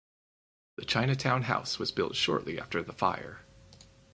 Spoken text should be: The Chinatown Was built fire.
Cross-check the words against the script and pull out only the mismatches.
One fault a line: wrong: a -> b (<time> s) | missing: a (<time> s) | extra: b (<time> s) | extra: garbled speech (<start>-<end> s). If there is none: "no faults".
extra: House (1.4 s)
extra: shortly after the (2.1 s)